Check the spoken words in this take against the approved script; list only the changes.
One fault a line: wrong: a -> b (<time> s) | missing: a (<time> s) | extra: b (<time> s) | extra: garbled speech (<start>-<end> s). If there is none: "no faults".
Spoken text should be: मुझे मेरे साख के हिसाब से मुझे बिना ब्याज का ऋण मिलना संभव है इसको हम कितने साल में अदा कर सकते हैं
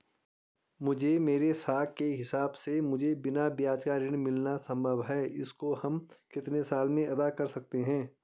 no faults